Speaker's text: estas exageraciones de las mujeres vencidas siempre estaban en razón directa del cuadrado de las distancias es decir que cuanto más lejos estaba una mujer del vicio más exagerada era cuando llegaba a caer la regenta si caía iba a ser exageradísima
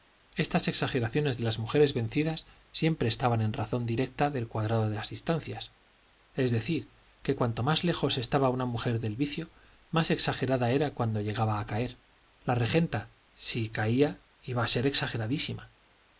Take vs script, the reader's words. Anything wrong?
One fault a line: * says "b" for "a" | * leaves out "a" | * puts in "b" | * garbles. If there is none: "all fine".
all fine